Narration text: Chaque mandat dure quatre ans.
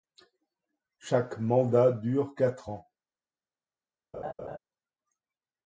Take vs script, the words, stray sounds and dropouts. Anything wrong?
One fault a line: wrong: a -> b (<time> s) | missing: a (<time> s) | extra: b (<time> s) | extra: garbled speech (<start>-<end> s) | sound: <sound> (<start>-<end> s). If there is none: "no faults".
sound: laugh (4.1-4.6 s)